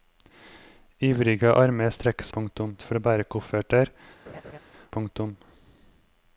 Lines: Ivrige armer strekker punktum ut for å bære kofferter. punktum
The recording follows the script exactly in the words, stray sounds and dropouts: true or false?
false